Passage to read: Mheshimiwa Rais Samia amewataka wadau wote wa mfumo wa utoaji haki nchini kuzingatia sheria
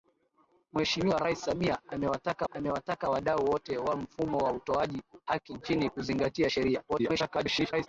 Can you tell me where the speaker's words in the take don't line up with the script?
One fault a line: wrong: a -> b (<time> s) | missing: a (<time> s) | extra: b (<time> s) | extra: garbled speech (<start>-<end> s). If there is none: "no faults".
extra: amewataka (2.5 s)
extra: garbled speech (6.9-7.9 s)